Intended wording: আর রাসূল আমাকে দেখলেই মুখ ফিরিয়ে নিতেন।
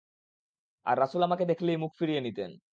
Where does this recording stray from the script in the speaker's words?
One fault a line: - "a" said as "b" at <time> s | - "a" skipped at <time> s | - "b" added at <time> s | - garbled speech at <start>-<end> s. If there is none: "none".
none